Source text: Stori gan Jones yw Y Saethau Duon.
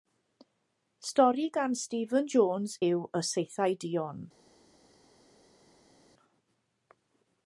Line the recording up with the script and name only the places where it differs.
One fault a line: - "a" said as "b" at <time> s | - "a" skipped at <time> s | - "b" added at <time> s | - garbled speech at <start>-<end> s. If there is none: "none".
- "Stephen" added at 1.8 s